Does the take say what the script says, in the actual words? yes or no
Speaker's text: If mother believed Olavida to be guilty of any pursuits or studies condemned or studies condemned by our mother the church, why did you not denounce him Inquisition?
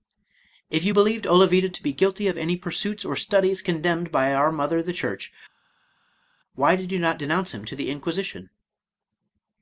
no